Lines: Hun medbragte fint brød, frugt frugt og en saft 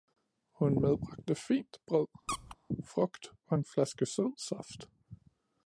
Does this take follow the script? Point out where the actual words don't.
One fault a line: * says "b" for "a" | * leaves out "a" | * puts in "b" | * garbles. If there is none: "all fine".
* leaves out "frugt"
* puts in "flaske sød"